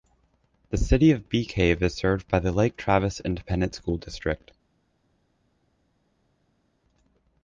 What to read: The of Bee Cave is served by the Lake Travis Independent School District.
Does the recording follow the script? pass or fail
fail